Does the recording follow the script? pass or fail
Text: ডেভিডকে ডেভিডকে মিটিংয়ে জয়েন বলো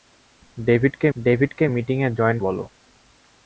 pass